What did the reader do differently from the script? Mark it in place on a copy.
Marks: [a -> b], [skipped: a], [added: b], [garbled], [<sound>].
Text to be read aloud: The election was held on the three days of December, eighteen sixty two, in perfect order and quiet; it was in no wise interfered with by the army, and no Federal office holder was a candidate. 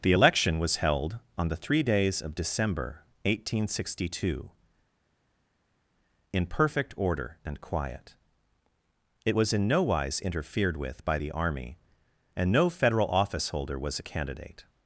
The election was held on the three days of December, eighteen sixty two, in perfect order and quiet; it was in no wise interfered with by the army, and no Federal office holder was a candidate.